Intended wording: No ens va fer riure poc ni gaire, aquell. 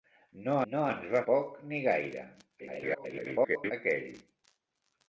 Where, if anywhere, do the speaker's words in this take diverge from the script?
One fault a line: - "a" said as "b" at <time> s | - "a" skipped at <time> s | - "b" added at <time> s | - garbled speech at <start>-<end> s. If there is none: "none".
- "no" added at 0.7 s
- "fer riure" skipped at 1.2 s
- garbled speech at 2.6-3.7 s